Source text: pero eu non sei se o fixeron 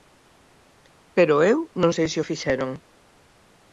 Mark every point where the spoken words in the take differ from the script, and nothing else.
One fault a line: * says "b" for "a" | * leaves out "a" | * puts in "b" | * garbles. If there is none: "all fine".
all fine